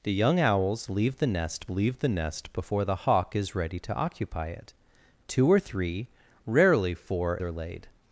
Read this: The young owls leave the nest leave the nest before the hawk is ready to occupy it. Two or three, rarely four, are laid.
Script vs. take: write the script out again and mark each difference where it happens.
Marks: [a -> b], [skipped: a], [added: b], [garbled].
The young owls leave the nest leave the nest before the hawk is ready to occupy it. Two or three, rarely four, are laid.